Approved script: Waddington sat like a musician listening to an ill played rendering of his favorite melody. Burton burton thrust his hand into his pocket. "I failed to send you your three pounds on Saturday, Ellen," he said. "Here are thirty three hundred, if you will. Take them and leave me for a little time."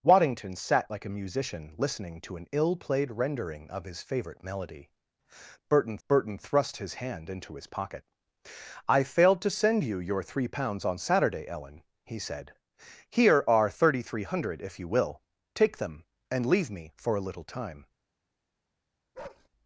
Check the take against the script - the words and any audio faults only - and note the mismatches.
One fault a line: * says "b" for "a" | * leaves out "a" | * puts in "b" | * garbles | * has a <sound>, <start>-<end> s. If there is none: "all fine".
* has a bark, 19.1-19.5 s